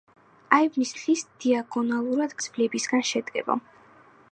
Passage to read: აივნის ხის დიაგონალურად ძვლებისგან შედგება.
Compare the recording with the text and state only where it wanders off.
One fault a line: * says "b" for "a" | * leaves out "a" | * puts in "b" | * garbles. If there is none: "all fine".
all fine